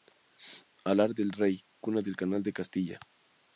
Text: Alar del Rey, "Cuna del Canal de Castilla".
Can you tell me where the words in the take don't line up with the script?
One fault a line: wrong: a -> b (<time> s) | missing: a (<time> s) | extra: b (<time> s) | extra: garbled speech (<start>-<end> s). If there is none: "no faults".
no faults